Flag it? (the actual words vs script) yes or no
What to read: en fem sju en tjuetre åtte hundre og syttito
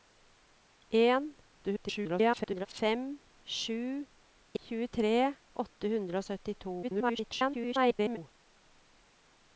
yes